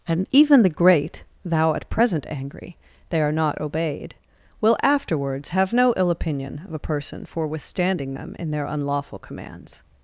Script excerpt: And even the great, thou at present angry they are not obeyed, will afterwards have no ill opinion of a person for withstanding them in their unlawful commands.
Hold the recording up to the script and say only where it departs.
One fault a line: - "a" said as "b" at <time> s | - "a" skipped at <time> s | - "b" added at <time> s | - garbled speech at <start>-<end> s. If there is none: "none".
none